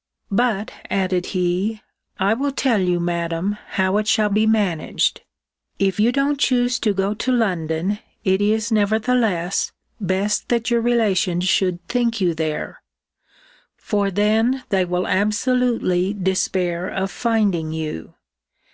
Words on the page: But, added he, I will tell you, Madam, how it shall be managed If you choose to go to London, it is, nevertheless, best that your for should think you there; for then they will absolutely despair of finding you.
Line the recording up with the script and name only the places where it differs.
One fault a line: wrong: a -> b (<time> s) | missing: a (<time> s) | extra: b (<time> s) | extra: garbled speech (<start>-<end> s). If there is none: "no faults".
extra: don't (6.1 s)
wrong: for -> relations (10.8 s)